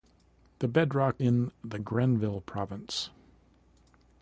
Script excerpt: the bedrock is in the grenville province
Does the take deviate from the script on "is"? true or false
true